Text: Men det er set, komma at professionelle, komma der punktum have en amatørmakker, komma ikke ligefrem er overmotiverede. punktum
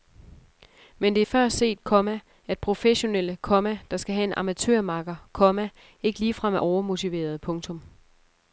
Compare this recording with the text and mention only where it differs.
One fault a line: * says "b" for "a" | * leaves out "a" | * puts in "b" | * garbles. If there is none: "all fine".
* puts in "før"
* says "skal" for "punktum"